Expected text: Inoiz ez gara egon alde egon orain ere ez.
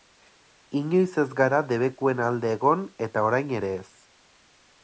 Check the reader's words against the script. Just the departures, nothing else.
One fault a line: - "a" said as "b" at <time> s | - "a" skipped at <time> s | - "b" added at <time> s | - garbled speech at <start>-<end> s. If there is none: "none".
- "egon" said as "debekuen" at 1.7 s
- "eta" added at 3.1 s